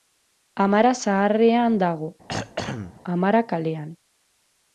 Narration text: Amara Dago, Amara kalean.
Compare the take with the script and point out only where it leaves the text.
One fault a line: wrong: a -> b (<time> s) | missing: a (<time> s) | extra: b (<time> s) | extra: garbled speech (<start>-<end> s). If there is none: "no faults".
extra: Zaharrean (1.0 s)